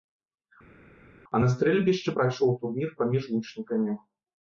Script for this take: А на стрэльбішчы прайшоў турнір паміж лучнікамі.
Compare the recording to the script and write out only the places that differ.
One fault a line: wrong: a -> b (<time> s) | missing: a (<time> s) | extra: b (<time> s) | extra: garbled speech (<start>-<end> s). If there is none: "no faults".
no faults